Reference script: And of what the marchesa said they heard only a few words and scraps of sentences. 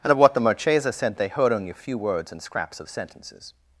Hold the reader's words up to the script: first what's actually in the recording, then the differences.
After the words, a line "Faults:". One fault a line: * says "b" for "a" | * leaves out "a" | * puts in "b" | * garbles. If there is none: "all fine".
And of what the marchesa sent they heard only a few words and scraps of sentences.
Faults:
* says "sent" for "said"